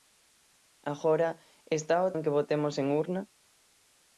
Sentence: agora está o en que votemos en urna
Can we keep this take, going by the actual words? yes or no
yes